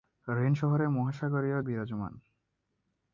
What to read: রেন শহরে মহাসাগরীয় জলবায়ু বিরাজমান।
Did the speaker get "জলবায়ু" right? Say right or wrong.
wrong